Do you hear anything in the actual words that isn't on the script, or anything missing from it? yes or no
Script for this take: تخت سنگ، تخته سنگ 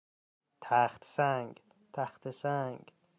no